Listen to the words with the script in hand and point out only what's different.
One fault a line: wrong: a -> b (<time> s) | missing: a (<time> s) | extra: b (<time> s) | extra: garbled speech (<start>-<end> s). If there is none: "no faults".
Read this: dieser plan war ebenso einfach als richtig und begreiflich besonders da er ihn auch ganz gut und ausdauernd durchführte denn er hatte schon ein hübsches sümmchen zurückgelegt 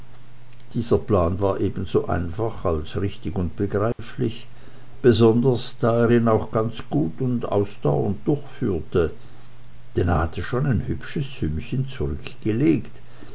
no faults